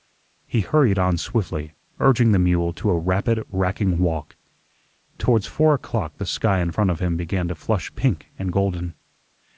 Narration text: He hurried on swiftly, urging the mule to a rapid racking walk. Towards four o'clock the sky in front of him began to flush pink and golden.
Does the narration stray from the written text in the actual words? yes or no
no